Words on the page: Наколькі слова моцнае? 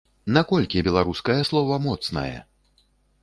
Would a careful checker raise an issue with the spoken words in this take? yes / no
yes